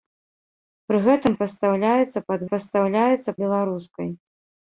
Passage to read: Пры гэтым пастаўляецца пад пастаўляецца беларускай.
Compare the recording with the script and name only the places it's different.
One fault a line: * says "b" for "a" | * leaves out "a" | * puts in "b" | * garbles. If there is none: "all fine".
all fine